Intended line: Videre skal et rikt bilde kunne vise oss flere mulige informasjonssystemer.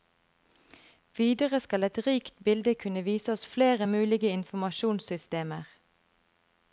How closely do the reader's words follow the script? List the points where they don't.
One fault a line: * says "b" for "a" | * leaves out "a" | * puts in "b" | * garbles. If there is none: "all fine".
all fine